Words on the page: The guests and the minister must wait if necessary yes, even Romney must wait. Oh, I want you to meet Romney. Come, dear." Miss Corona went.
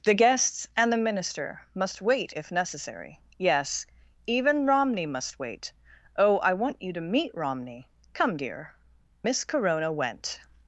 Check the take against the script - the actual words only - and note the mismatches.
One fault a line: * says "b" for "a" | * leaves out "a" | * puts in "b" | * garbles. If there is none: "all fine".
all fine